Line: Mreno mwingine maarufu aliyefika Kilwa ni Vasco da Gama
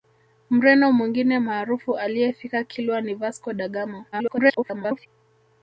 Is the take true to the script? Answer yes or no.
no